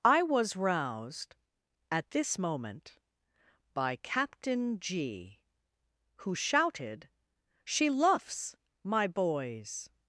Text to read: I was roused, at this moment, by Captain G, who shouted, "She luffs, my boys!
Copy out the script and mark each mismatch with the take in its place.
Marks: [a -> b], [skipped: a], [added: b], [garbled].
I was roused, at this moment, by Captain G, who shouted, "She luffs, my boys!